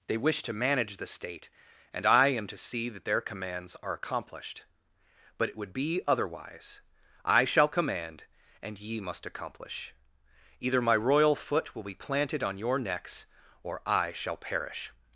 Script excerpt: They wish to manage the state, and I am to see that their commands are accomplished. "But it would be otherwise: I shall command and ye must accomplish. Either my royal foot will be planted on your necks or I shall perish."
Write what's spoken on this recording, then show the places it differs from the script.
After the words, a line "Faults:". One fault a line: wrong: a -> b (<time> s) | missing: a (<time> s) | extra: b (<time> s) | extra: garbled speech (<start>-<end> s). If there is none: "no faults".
They wish to manage the state, and I am to see that their commands are accomplished. "But it would be otherwise: I shall command and ye must accomplish. Either my royal foot will be planted on your necks or I shall perish."
Faults:
no faults